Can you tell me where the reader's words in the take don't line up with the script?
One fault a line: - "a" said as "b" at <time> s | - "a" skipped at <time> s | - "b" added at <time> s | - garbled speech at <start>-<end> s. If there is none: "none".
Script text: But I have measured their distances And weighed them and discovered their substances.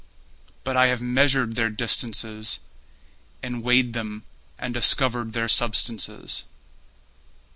none